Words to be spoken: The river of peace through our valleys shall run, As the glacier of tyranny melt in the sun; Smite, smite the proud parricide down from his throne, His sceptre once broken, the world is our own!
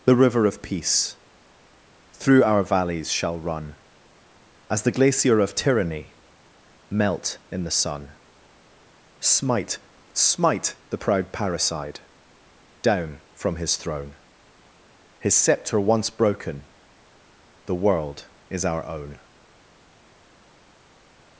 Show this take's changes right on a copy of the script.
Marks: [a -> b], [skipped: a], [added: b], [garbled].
The river of peace through our valleys shall run, As the glacier of tyranny melt in the sun; Smite, smite the proud parricide down from his throne, His sceptre once broken, the world is our own!